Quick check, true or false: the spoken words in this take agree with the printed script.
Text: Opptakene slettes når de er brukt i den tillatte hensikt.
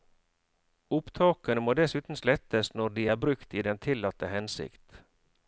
false